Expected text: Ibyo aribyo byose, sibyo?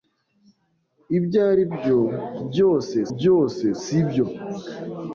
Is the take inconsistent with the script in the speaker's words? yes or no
yes